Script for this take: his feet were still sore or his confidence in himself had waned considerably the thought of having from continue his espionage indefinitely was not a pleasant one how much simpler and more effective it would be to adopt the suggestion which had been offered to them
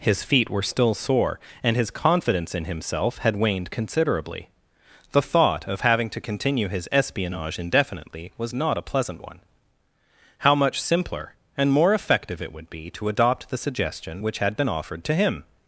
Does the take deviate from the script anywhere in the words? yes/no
yes